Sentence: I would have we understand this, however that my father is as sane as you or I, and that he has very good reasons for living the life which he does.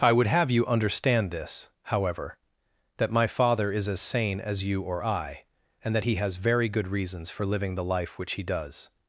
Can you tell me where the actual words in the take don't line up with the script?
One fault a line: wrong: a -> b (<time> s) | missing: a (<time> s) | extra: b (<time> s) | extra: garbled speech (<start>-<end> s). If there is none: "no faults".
wrong: we -> you (0.5 s)